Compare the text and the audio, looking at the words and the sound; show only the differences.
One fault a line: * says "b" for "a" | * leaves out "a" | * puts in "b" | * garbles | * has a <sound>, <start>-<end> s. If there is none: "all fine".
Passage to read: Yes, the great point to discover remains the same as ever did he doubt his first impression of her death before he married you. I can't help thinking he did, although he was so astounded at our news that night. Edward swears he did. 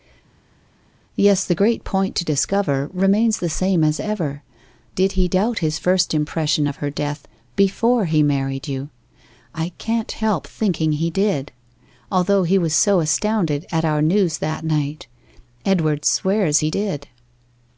all fine